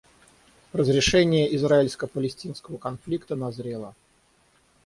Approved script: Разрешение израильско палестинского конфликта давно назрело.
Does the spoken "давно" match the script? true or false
false